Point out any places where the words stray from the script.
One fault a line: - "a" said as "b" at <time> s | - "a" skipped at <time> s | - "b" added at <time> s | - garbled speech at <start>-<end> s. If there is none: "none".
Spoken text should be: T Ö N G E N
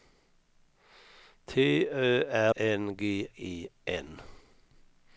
none